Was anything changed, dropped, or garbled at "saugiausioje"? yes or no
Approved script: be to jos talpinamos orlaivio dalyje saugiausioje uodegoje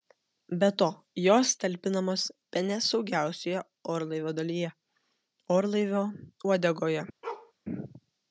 yes